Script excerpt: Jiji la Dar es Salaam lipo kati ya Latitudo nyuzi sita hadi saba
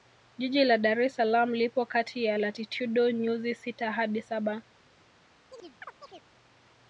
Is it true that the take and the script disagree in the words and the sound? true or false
true